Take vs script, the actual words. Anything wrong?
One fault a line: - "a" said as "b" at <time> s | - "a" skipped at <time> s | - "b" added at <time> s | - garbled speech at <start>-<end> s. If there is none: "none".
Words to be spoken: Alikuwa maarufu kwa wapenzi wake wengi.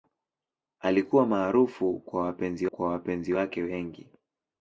- "kwa wapenzi" added at 2.6 s